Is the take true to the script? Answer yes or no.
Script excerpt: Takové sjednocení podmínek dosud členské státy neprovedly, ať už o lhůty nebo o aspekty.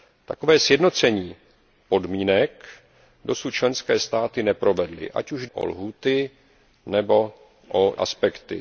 yes